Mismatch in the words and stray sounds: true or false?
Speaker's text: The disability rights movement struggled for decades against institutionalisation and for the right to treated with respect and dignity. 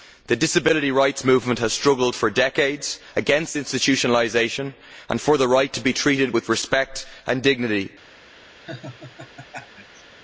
true